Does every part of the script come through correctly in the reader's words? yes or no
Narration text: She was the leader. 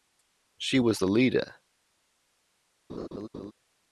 yes